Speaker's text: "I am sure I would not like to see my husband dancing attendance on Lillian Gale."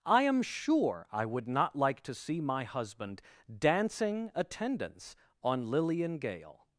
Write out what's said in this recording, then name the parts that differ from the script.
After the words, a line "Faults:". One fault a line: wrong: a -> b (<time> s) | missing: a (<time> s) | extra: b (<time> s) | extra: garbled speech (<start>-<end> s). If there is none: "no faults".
"I am sure I would not like to see my husband dancing attendance on Lillian Gale."
Faults:
no faults